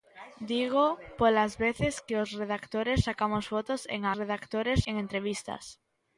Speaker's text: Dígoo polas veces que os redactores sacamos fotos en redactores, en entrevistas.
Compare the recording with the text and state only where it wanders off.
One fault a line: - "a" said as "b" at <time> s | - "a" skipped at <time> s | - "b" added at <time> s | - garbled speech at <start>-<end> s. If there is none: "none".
none